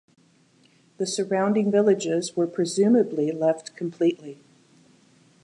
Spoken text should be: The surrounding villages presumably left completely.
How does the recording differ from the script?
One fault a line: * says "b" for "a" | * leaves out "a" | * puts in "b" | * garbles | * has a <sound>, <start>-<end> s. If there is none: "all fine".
* puts in "were"